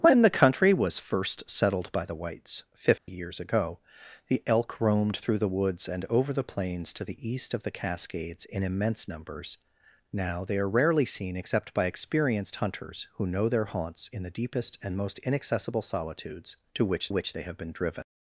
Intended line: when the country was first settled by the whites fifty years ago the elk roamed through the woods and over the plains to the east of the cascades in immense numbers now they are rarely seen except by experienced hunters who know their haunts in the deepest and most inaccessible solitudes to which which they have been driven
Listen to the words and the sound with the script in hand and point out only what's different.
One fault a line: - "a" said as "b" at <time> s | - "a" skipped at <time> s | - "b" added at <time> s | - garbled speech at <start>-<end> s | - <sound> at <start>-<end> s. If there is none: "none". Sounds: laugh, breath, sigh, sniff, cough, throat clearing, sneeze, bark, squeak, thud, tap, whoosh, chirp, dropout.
- dropout at 3.0-3.1 s